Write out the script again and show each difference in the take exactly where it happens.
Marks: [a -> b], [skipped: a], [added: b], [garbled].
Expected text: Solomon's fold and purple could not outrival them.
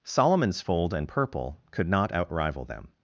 Solomon's fold and purple could not outrival them.